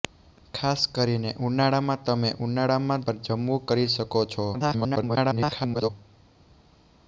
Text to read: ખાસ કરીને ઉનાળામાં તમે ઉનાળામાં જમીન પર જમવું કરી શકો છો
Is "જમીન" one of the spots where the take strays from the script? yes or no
yes